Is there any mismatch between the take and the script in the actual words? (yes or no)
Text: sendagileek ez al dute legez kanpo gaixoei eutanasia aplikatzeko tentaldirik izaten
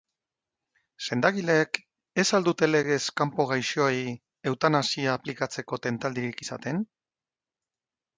no